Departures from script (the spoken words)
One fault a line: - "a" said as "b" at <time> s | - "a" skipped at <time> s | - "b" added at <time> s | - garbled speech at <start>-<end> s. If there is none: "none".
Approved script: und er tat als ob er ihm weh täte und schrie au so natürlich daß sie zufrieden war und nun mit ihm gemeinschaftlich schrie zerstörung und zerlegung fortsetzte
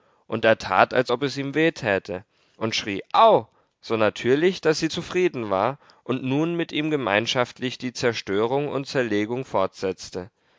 - "er" said as "es" at 1.2 s
- "schrie" said as "die" at 7.8 s